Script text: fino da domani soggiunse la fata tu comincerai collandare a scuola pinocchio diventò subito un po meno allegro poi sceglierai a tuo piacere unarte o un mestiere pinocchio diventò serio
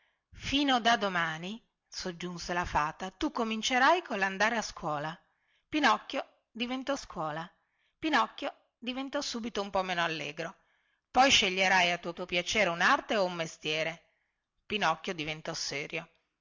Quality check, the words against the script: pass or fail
fail